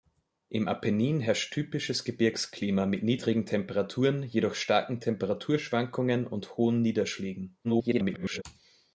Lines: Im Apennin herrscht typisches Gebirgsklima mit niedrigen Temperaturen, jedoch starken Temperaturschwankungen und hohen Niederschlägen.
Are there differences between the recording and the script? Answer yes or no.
yes